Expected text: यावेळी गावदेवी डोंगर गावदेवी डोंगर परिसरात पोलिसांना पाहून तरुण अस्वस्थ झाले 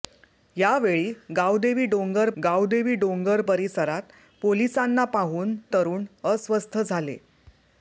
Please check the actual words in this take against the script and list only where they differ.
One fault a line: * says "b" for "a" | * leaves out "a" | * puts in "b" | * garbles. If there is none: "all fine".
all fine